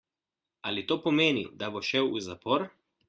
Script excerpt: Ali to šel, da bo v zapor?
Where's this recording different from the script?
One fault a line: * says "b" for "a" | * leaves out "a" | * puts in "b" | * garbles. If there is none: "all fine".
* says "pomeni" for "šel"
* puts in "šel"